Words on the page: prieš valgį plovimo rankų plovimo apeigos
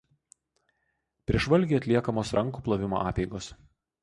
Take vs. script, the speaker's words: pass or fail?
fail